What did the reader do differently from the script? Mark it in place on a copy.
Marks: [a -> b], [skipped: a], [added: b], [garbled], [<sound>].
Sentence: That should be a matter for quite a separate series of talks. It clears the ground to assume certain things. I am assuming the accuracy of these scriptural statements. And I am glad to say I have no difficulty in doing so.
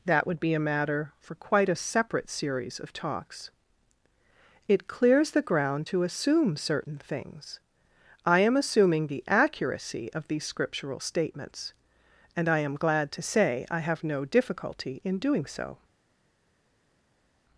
That [should -> would] be a matter for quite a separate series of talks. It clears the ground to assume certain things. I am assuming the accuracy of these scriptural statements. And I am glad to say I have no difficulty in doing so.